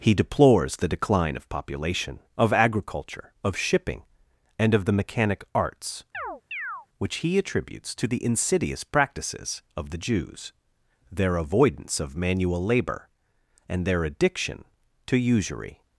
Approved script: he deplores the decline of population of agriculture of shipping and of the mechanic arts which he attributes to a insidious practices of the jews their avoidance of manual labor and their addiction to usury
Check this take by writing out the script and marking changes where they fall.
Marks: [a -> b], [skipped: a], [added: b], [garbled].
he deplores the decline of population of agriculture of shipping and of the mechanic arts which he attributes to [a -> the] insidious practices of the jews their avoidance of manual labor and their addiction to usury